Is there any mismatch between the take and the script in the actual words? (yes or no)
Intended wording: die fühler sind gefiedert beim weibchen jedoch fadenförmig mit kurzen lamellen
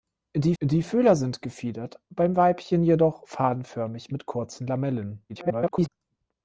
yes